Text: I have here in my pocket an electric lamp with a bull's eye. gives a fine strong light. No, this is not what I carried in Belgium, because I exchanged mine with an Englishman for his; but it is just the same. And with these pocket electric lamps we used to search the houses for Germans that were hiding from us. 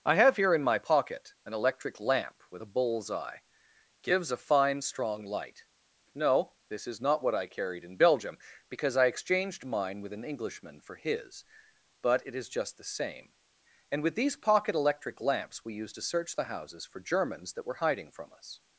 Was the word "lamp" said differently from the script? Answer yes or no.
no